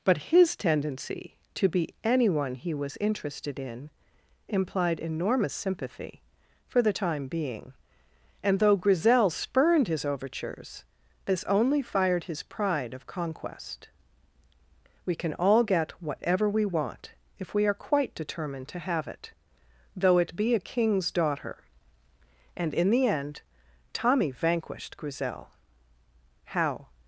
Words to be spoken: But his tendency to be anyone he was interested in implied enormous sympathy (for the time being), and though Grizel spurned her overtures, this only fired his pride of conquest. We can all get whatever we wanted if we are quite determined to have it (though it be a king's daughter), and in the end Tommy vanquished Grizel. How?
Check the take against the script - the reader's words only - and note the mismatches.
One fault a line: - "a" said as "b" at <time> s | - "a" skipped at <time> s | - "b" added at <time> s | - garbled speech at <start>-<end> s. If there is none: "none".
- "her" said as "his" at 9.9 s
- "wanted" said as "want" at 16.6 s